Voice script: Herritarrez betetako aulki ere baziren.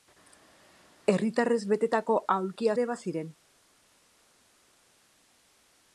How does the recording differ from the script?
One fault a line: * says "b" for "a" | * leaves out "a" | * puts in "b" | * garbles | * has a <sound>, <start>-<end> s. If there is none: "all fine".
all fine